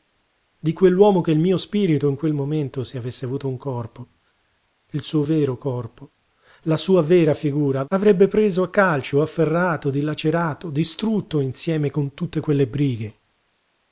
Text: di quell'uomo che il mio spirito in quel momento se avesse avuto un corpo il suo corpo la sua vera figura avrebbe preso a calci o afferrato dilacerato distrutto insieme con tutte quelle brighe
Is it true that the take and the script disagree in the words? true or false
true